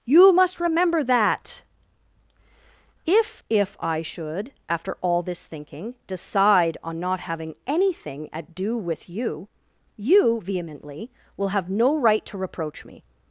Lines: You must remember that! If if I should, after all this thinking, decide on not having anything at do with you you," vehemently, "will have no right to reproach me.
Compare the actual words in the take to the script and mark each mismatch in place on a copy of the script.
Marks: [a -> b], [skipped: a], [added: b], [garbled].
You must remember that! If if I should, after all this thinking, decide on not having anything at do with you you," vehemently, "will have no right to reproach me.